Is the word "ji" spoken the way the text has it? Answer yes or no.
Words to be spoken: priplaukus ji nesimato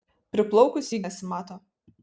yes